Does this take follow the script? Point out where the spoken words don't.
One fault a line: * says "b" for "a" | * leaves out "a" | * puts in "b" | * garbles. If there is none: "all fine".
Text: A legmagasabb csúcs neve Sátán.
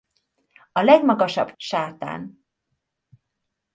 * leaves out "csúcs neve"